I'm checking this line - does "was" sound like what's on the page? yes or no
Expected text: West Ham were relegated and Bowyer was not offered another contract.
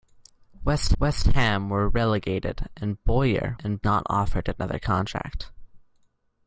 no